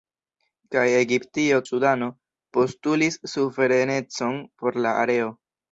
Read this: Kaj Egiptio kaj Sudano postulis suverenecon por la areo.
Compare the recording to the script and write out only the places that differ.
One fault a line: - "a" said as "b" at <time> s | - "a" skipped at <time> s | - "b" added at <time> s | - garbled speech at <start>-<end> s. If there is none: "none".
- "kaj" skipped at 1.6 s